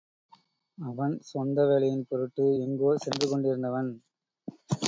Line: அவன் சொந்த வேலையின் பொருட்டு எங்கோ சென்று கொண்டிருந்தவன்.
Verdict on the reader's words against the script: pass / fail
pass